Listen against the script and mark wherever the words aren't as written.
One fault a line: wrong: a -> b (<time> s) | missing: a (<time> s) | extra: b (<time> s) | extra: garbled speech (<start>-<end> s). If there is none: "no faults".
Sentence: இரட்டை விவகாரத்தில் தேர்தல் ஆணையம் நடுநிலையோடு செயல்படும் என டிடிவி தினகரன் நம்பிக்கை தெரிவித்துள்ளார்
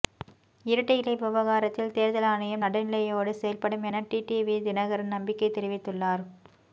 extra: இலை (1.0 s)